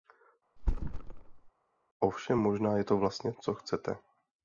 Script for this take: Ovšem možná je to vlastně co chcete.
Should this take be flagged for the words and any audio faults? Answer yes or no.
yes